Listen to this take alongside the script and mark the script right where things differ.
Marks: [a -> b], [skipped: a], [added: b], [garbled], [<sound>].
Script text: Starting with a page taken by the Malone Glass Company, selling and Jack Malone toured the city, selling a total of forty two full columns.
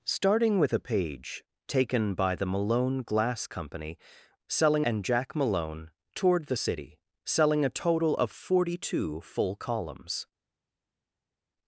Starting with a page taken by the Malone Glass Company, selling and Jack Malone toured the city, selling a total of forty two full columns.